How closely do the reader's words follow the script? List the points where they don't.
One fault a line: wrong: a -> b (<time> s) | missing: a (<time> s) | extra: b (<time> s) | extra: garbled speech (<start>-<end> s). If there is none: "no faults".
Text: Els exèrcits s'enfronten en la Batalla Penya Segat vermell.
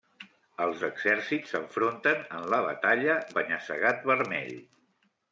no faults